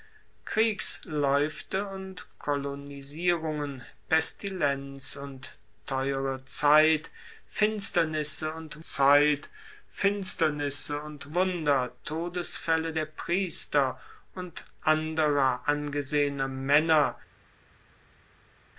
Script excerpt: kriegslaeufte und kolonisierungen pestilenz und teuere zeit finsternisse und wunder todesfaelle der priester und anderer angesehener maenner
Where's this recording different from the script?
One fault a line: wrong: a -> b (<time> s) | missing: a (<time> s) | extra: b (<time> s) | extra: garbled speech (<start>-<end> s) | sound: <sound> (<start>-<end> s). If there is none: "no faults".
extra: zeit finsternisse und (8.8 s)